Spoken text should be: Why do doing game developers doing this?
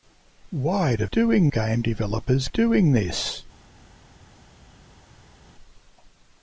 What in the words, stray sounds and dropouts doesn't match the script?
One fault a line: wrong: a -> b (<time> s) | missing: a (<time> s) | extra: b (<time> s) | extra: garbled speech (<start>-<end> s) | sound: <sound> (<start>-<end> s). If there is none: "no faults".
no faults